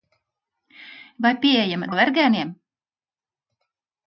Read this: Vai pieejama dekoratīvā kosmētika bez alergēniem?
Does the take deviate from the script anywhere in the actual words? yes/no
yes